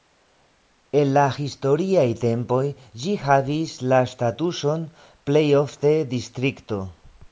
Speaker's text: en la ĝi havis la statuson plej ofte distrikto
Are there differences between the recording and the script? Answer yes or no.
yes